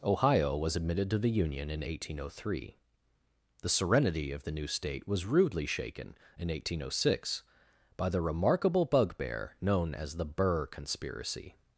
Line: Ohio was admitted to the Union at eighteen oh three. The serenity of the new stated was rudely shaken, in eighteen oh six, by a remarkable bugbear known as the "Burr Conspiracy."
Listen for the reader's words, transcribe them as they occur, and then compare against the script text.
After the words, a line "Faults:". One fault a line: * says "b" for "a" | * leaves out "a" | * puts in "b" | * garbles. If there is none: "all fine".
Ohio was admitted to the Union in eighteen oh three. The serenity of the new state was rudely shaken, in eighteen oh six, by the remarkable bugbear known as the "Burr Conspiracy."
Faults:
* says "in" for "at"
* says "state" for "stated"
* says "the" for "a"